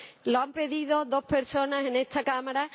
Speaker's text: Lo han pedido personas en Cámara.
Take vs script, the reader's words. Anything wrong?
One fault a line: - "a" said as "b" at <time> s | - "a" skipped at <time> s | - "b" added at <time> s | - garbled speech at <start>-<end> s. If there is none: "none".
- "dos" added at 1.0 s
- "esta" added at 1.9 s